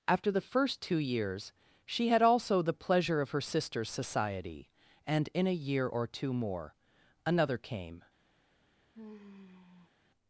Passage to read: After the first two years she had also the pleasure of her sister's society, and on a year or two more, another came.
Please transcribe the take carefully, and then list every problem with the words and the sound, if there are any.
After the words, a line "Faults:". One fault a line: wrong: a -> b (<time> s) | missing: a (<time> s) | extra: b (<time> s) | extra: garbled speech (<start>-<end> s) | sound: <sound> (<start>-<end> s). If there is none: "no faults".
After the first two years she had also the pleasure of her sister's society, and in a year or two more, another came.
Faults:
wrong: on -> in (5.3 s)
sound: sigh (8.9-9.9 s)